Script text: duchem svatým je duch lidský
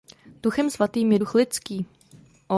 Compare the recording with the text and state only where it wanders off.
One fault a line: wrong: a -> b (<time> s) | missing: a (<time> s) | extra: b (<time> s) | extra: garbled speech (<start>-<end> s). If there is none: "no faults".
no faults